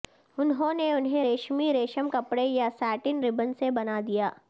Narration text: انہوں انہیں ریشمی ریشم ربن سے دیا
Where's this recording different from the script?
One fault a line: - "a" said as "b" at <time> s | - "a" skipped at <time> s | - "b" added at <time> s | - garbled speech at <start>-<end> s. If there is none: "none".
- "نے" added at 0.7 s
- "کپڑے یا ساٹن" added at 2.1 s
- "بنا" added at 3.7 s